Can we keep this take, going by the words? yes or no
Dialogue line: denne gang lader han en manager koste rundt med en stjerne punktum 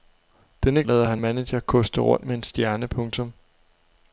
no